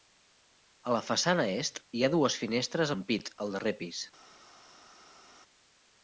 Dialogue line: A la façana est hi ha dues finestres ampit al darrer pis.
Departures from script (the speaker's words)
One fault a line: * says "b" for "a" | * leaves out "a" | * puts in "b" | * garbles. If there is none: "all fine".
all fine